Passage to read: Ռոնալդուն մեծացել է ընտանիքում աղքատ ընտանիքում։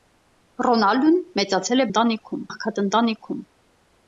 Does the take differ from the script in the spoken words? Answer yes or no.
no